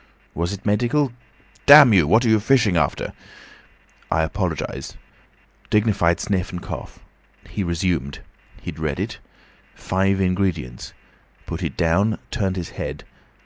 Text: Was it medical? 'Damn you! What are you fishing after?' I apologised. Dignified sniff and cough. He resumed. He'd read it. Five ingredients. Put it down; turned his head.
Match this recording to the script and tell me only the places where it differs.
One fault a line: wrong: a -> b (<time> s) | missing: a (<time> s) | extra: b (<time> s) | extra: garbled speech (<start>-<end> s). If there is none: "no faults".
no faults